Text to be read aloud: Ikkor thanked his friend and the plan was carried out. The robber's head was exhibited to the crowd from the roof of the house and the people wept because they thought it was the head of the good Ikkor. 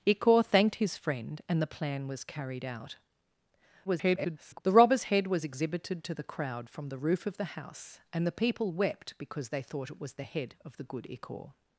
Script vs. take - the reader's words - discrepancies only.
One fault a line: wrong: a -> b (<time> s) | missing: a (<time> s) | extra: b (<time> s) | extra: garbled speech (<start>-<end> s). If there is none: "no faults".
extra: garbled speech (3.8-4.6 s)